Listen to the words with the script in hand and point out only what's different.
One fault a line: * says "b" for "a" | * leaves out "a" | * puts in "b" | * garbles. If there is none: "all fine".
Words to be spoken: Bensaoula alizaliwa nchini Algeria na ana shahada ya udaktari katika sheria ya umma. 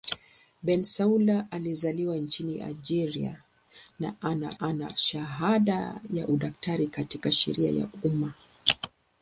* puts in "ana"